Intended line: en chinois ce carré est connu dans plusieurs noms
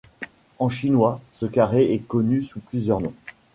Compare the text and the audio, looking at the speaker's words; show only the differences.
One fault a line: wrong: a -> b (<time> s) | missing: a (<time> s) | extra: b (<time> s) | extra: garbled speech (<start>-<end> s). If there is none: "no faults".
wrong: dans -> sous (2.4 s)